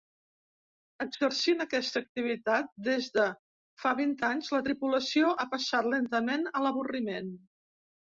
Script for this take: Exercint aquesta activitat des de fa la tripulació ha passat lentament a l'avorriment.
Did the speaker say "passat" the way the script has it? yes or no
yes